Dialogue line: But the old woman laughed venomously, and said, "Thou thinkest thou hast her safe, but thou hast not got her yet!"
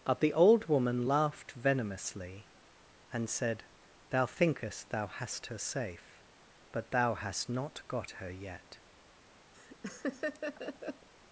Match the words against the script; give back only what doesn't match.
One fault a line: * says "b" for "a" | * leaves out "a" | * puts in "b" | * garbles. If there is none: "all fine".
all fine